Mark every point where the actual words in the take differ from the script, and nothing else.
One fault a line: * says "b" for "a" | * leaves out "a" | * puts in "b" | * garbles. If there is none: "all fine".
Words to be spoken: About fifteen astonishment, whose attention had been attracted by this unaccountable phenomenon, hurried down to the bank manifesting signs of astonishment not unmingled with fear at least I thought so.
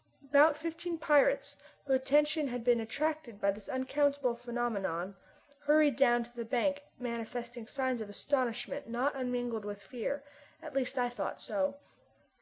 * says "pirates" for "astonishment"